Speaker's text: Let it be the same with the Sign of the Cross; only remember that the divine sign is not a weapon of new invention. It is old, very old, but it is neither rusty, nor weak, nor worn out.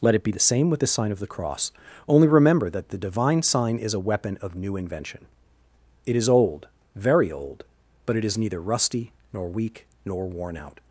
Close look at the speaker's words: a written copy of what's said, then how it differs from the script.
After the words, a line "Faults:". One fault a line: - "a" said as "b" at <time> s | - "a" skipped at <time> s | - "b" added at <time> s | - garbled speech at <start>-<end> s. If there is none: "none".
Let it be the same with the Sign of the Cross; only remember that the divine sign is a weapon of new invention. It is old, very old, but it is neither rusty, nor weak, nor worn out.
Faults:
- "not" skipped at 3.9 s